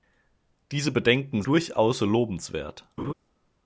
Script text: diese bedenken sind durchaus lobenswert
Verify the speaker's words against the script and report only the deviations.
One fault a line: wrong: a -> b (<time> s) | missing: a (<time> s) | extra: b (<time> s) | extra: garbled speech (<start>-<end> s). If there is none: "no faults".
missing: sind (1.4 s)